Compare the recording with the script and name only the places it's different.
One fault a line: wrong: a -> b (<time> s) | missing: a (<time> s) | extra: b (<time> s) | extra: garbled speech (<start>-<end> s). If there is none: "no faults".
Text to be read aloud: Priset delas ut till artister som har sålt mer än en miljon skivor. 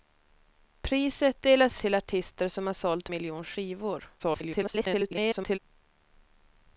missing: ut (1.8 s)
missing: mer än en (3.1 s)
extra: garbled speech (4.2-5.6 s)